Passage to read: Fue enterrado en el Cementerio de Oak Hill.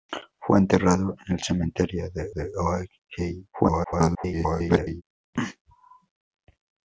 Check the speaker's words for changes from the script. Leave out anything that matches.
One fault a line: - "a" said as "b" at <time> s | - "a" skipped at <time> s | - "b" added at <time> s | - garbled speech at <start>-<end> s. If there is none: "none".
- "de" added at 2.3 s
- garbled speech at 3.5-5.0 s